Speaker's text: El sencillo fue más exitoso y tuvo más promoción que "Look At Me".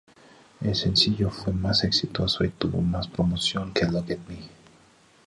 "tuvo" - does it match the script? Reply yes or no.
yes